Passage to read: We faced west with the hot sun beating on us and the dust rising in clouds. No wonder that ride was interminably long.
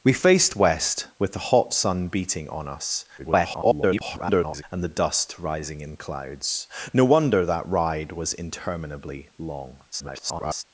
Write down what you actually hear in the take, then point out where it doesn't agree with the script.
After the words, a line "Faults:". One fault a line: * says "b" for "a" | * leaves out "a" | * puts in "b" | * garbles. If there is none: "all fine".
We faced west with the hot sun beating on us [garbled] and the dust rising in clouds. No wonder that ride was interminably long. [garbled]
Faults:
* garbles
* garbles